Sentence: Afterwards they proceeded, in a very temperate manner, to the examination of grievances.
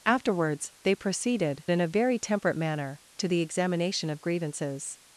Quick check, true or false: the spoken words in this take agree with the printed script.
true